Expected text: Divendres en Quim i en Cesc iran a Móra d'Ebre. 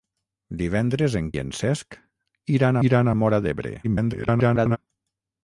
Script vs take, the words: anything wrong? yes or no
yes